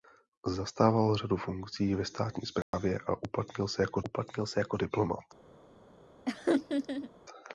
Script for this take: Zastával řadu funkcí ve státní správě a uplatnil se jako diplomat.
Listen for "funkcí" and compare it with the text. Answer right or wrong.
right